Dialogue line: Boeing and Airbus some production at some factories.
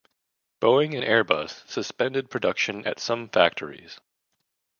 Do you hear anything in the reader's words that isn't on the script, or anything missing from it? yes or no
yes